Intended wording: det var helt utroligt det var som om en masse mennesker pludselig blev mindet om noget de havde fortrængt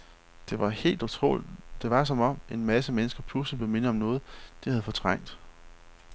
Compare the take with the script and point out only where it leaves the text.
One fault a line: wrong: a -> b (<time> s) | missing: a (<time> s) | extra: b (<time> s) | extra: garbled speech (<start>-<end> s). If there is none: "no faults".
no faults